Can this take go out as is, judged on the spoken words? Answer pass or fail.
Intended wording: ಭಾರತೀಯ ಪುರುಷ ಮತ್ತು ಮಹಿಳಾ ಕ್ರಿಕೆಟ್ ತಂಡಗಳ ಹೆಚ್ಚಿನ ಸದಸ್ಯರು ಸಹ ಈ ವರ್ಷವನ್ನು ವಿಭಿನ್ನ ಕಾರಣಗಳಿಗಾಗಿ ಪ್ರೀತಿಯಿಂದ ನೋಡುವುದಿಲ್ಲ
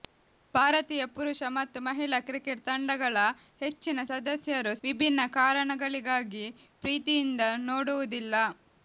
fail